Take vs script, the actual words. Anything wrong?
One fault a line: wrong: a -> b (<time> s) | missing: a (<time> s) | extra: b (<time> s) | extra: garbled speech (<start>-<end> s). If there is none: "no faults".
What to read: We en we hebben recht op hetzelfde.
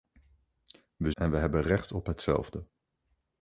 no faults